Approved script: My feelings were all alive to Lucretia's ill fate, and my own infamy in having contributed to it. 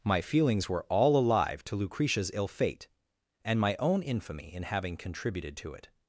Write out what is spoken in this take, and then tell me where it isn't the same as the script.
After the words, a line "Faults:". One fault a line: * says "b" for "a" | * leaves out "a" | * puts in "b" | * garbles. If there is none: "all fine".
My feelings were all alive to Lucretia's ill fate, and my own infamy in having contributed to it.
Faults:
all fine